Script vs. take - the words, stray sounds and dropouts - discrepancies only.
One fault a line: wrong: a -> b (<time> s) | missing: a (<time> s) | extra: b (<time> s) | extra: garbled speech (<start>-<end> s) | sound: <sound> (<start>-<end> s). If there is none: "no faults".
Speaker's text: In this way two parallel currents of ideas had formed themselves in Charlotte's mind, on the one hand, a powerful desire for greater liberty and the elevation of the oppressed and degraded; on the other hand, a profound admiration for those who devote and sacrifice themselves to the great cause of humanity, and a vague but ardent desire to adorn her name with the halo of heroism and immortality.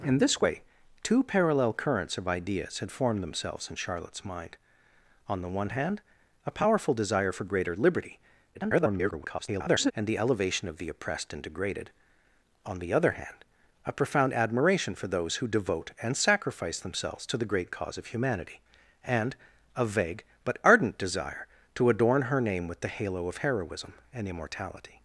extra: garbled speech (8.5-9.9 s)